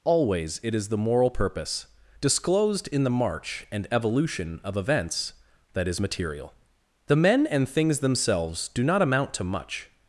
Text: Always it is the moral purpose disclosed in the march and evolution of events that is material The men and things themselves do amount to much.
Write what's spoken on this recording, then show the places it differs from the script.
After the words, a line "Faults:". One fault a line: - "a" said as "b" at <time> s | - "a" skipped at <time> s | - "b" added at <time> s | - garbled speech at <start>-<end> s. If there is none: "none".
Always it is the moral purpose disclosed in the march and evolution of events that is material The men and things themselves do not amount to much.
Faults:
- "not" added at 8.8 s